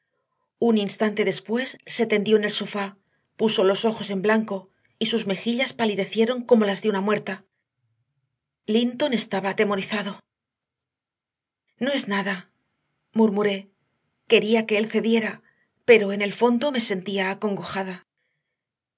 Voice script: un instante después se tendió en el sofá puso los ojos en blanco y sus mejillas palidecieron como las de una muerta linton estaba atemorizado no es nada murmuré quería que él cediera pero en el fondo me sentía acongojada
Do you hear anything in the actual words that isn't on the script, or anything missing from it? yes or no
no